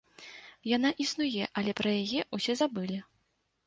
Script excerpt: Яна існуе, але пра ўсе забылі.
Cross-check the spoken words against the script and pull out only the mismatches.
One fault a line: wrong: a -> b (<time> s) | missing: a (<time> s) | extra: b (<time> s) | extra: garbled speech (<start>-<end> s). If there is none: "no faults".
extra: яе (2.0 s)